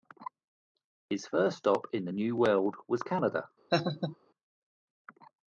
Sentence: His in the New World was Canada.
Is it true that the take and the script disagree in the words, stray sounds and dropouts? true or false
true